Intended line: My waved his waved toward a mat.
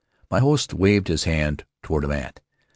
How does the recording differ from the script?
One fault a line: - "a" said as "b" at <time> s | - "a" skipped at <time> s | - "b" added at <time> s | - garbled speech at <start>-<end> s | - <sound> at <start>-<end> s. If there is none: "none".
- "host" added at 0.4 s
- "waved" said as "hand" at 1.2 s